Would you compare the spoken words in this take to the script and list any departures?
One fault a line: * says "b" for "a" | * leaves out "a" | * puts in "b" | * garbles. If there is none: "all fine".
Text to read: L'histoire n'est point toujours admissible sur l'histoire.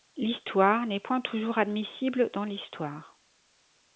* says "dans" for "sur"